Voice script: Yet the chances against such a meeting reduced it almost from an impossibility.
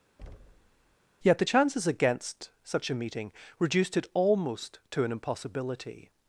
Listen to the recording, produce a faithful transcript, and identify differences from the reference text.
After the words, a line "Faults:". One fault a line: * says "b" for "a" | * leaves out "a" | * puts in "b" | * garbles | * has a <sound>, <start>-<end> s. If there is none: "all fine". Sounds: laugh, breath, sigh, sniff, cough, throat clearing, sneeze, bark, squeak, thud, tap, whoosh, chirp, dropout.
Yet the chances against such a meeting reduced it almost to an impossibility.
Faults:
* has a thud, 0.2-1.0 s
* says "to" for "from"